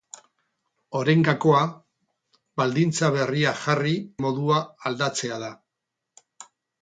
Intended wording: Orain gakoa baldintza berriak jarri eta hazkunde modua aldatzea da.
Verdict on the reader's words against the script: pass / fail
fail